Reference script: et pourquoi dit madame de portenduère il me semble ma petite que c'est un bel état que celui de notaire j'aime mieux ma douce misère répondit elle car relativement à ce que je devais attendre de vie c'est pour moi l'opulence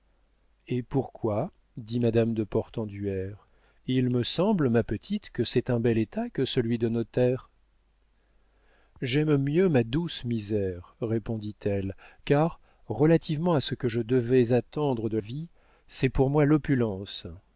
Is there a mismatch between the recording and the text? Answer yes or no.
no